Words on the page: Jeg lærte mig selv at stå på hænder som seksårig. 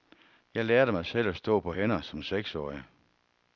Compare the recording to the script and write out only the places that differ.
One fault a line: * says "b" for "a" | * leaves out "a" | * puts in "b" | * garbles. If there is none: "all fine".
all fine